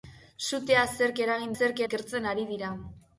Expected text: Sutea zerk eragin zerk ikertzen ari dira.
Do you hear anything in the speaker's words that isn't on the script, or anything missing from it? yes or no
no